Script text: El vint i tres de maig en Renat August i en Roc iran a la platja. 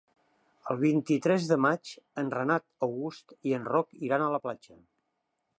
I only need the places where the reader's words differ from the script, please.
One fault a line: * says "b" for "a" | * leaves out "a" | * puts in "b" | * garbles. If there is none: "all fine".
all fine